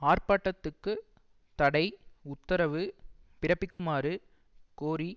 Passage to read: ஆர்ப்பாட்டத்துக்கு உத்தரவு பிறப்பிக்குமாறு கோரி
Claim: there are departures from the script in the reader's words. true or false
true